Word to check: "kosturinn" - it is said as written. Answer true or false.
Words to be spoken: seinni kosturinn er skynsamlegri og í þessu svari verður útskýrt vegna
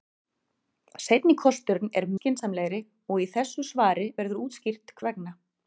true